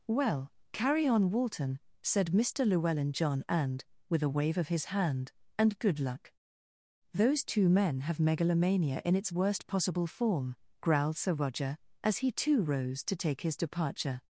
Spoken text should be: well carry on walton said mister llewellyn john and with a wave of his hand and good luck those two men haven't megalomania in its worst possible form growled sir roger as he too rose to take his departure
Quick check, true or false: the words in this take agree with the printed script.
false